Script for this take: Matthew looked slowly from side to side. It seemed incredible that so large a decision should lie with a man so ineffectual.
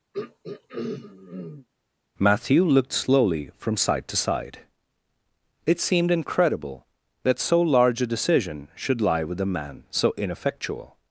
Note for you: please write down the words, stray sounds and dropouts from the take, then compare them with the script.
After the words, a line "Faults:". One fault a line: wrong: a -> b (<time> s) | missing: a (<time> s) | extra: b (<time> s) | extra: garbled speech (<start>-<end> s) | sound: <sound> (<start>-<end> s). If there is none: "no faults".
Matthew looked slowly from side to side. It seemed incredible that so large a decision should lie with a man so ineffectual.
Faults:
sound: throat clearing (0.1-1.7 s)